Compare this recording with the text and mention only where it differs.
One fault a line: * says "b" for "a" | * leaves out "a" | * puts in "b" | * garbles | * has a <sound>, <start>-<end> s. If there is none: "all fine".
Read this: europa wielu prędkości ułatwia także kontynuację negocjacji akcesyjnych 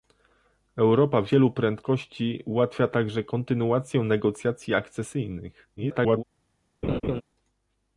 * garbles
* has a laugh, 6.8-7.2 s